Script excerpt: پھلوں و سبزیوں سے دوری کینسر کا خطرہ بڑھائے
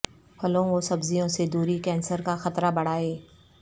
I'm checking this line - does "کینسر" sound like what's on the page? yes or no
yes